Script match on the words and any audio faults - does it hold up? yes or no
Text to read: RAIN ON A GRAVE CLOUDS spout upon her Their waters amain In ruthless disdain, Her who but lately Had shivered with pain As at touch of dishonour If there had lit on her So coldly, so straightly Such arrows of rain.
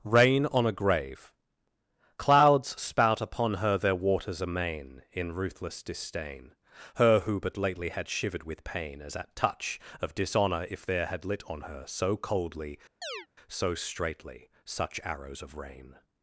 no